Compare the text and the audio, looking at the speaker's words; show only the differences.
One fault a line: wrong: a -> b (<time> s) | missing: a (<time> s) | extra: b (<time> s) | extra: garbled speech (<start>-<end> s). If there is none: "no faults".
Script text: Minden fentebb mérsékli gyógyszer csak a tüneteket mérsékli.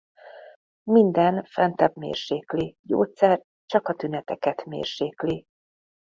no faults